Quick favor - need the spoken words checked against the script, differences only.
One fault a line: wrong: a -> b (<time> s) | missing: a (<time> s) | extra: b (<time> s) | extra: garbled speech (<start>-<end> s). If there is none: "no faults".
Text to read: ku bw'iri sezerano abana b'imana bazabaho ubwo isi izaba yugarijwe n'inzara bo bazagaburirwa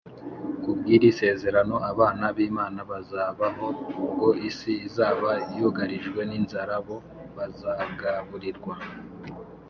no faults